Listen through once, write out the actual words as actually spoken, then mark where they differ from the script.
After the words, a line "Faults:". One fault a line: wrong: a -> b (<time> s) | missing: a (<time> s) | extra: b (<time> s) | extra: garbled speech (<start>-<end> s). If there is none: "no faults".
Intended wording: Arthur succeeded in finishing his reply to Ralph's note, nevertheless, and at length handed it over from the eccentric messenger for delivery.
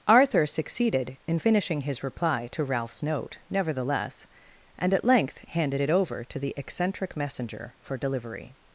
Arthur succeeded in finishing his reply to Ralph's note, nevertheless, and at length handed it over to the eccentric messenger for delivery.
Faults:
wrong: from -> to (6.2 s)